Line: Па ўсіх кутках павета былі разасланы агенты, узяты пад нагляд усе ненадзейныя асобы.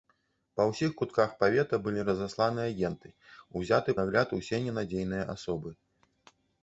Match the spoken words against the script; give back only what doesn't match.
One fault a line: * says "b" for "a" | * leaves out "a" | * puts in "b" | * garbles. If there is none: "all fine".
* leaves out "пад"